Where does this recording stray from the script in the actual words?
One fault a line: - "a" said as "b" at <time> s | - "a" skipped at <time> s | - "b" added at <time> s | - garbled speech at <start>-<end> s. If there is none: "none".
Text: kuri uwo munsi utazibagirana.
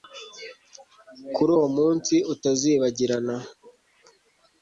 none